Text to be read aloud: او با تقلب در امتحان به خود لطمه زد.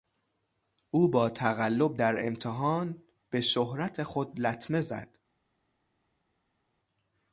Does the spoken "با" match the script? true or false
true